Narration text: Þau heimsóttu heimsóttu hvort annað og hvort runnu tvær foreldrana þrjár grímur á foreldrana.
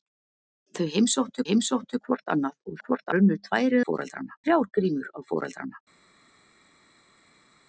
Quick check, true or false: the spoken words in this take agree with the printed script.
true